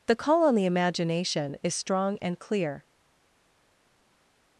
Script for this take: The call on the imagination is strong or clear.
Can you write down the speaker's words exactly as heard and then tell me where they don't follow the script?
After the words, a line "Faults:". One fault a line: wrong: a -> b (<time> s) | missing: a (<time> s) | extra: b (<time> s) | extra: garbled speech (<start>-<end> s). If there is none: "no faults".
The call on the imagination is strong and clear.
Faults:
wrong: or -> and (2.2 s)